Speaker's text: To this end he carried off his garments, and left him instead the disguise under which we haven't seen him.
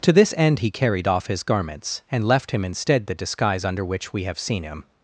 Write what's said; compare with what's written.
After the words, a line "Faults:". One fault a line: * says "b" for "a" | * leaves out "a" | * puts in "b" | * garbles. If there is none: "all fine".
To this end he carried off his garments, and left him instead the disguise under which we have seen him.
Faults:
* says "have" for "haven't"